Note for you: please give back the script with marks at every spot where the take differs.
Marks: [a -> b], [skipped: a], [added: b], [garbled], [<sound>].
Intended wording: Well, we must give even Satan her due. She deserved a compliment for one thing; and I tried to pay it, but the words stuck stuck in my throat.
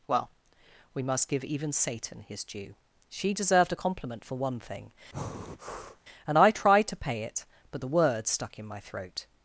Well, we must give even Satan [her -> his] due. She deserved a compliment for one thing; [breath] and I tried to pay it, but the words stuck [skipped: stuck] in my throat.